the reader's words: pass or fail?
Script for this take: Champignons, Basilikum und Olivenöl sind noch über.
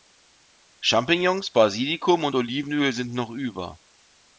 pass